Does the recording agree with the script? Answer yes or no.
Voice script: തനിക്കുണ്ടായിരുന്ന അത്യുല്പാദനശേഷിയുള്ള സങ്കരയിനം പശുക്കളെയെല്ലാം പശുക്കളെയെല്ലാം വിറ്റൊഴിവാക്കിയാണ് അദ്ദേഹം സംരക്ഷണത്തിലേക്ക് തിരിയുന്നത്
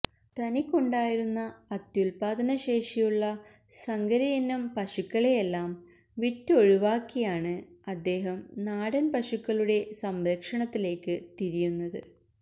no